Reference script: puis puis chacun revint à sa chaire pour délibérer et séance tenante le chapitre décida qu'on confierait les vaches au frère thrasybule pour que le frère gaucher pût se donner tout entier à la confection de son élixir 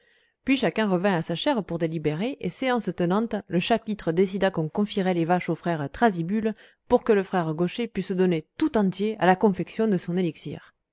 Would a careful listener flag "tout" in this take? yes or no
no